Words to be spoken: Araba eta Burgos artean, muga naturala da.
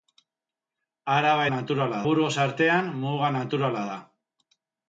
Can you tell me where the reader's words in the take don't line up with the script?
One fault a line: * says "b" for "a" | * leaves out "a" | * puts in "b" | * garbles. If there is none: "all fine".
* says "naturala" for "eta"